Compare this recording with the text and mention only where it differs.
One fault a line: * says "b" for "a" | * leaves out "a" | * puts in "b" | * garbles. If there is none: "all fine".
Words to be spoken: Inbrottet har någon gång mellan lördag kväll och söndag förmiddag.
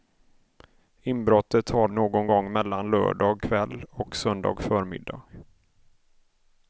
all fine